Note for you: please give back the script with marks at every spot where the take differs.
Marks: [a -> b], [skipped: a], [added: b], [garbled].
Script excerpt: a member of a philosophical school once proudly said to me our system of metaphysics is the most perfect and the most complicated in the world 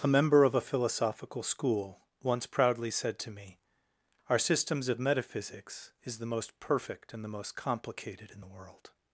a member of a philosophical school once proudly said to me our [system -> systems] of metaphysics is the most perfect and the most complicated in the world